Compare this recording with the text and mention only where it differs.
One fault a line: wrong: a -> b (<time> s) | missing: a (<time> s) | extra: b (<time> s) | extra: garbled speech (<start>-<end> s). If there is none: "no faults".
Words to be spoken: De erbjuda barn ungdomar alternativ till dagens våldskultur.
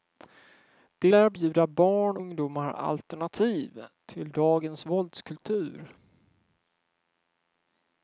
no faults